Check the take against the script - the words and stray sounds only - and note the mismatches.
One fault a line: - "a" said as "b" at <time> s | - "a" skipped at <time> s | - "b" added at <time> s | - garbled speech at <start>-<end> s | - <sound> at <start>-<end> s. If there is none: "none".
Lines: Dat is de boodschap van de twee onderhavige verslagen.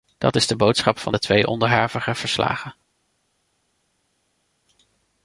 none